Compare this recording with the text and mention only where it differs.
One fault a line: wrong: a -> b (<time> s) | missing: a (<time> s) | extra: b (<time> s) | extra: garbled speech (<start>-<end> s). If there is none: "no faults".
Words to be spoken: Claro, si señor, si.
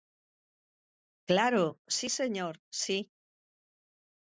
no faults